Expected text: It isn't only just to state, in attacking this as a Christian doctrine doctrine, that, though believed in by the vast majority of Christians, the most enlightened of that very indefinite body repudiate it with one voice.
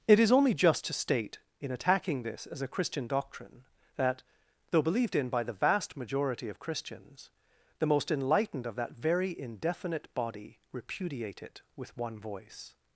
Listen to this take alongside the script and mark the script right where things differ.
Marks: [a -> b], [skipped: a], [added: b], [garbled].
It [isn't -> is] only just to state, in attacking this as a Christian doctrine [skipped: doctrine,] that, though believed in by the vast majority of Christians, the most enlightened of that very indefinite body repudiate it with one voice.